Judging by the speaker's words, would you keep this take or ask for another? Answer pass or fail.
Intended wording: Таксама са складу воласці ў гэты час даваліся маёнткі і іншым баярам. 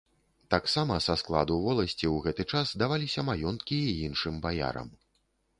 pass